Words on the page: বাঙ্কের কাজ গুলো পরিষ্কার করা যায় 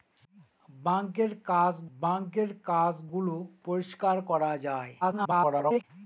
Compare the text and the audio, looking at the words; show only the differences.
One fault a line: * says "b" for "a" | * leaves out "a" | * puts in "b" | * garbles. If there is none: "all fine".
* puts in "বাঙ্কের কাজ"
* garbles